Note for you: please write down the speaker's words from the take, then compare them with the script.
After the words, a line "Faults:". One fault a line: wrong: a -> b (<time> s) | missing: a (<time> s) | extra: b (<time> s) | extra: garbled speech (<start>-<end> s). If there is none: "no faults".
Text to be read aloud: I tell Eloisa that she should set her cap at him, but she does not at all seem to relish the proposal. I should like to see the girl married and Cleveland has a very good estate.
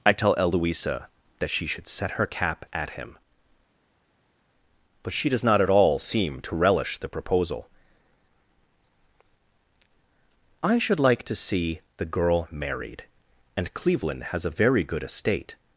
I tell Eloisa that she should set her cap at him, but she does not at all seem to relish the proposal. I should like to see the girl married and Cleveland has a very good estate.
Faults:
no faults